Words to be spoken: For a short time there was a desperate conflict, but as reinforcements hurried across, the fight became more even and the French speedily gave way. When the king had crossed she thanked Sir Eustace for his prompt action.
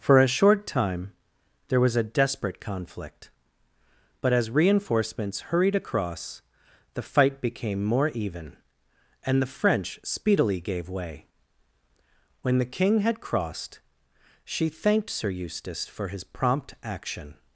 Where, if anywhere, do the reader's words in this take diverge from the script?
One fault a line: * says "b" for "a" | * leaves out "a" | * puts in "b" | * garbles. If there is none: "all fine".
all fine